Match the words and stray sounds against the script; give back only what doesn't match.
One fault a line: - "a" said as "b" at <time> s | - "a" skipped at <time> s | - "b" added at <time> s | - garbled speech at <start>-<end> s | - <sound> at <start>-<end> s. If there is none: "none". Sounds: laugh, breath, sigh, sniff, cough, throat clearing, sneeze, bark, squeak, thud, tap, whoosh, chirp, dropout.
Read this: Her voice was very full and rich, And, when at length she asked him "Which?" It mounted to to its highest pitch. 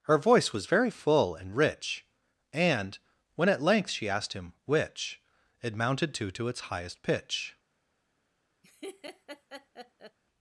- laugh at 8.6-10.2 s